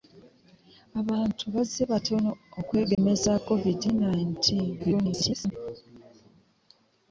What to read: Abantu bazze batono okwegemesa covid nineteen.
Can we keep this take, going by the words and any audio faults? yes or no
no